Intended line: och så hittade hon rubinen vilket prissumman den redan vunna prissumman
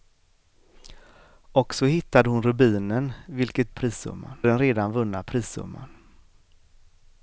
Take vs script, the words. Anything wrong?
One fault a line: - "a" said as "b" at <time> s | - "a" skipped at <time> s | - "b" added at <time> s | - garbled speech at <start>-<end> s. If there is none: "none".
none